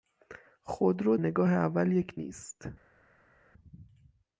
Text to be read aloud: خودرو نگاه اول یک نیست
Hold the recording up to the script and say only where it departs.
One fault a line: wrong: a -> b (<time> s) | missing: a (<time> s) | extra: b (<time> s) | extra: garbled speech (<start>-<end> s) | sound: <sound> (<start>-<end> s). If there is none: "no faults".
no faults